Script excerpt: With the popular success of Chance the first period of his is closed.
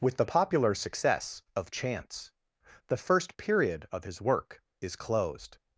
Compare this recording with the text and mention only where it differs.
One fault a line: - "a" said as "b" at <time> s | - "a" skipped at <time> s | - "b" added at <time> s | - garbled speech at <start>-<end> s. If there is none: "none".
- "work" added at 4.2 s